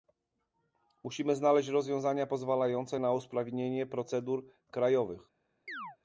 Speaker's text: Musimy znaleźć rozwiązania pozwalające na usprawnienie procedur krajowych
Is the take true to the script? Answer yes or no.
yes